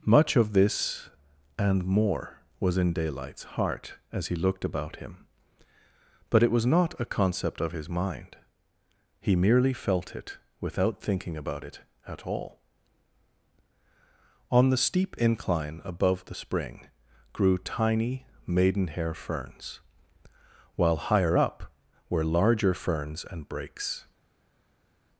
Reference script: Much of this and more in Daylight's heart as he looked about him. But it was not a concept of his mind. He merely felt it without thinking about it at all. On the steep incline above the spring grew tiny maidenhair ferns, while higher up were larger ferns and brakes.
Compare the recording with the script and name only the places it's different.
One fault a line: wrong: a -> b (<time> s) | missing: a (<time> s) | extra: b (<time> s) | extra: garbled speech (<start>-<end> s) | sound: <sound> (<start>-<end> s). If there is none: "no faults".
extra: was (2.6 s)